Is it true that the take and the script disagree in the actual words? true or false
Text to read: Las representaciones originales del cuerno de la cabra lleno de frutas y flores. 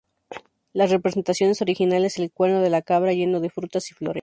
false